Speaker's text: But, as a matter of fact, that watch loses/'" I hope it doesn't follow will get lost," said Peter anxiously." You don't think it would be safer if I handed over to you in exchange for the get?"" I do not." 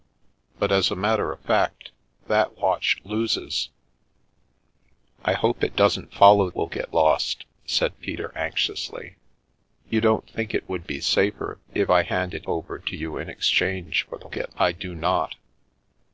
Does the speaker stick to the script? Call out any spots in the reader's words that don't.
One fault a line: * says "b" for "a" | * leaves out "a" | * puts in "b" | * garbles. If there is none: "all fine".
all fine